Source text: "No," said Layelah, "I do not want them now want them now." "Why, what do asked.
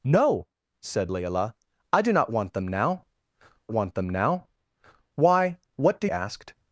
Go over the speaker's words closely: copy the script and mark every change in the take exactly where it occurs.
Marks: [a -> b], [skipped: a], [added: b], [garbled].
"No," said Layelah, "I do not want them now want them now." "Why, what do asked.